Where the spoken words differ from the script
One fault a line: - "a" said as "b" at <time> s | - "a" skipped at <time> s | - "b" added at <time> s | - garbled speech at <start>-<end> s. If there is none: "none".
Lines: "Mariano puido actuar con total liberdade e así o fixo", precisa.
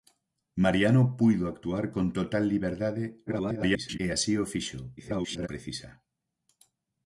- garbled speech at 3.3-4.0 s
- garbled speech at 5.0-5.5 s